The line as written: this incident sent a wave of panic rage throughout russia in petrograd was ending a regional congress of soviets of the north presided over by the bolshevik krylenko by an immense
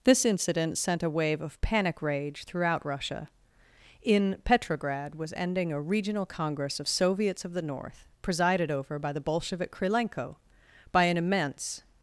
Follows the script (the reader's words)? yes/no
yes